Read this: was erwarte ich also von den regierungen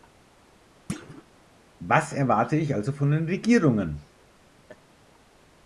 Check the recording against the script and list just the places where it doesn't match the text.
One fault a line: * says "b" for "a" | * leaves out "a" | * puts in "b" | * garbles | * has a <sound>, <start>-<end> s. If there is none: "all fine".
* has a thud, 0.9-1.2 s
* has a laugh, 4.7-4.8 s